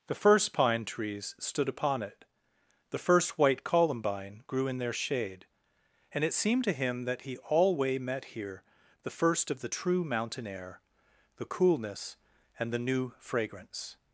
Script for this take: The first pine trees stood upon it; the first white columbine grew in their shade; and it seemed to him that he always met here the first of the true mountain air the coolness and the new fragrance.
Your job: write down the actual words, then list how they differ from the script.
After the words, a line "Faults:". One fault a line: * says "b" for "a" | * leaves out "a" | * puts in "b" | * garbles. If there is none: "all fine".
The first pine trees stood upon it; the first white columbine grew in their shade; and it seemed to him that he alway met here the first of the true mountain air the coolness and the new fragrance.
Faults:
* says "alway" for "always"